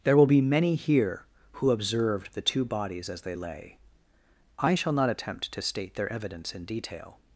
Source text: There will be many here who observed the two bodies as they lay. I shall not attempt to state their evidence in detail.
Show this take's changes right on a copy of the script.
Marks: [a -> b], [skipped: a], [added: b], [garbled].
There will be many here who observed the two bodies as they lay. I shall not attempt to state their evidence in detail.